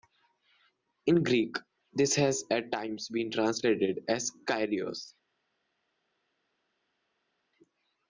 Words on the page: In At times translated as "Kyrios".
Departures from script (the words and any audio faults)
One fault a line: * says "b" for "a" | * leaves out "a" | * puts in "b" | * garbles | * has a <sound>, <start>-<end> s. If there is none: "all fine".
* puts in "Greek this has"
* puts in "been"